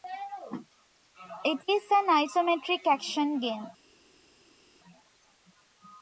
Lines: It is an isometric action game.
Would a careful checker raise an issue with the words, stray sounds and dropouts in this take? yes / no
no